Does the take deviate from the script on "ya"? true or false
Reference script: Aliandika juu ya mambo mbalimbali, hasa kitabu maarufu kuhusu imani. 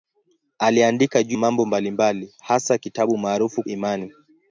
true